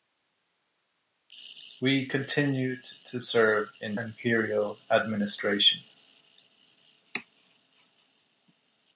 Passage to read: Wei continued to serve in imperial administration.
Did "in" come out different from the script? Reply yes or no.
no